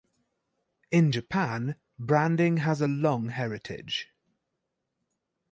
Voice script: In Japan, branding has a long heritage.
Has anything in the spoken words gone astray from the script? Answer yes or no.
no